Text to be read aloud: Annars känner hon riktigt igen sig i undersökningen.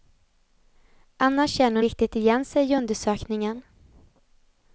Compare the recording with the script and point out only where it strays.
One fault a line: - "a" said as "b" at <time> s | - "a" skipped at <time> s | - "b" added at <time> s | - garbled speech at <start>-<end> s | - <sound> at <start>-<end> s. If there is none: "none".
none